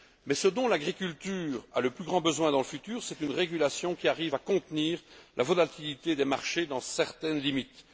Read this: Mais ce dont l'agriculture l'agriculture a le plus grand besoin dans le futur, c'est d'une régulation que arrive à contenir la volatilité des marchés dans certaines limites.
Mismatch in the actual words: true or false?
true